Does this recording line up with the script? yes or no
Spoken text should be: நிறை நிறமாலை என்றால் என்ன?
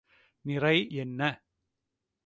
no